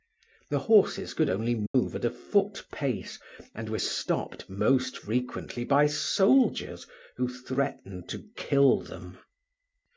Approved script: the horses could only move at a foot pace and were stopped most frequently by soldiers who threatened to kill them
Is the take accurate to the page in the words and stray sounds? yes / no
no